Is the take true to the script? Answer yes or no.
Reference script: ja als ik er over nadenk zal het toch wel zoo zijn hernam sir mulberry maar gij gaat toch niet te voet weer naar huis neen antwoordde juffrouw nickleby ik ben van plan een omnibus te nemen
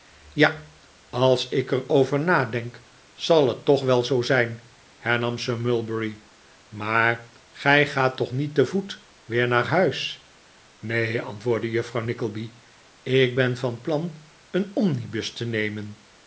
yes